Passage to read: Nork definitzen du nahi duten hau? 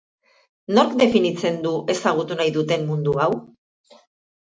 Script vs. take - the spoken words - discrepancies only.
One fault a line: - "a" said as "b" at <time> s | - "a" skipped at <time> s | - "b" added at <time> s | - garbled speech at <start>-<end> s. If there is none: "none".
- "ezagutu" added at 1.9 s
- "mundu" added at 2.9 s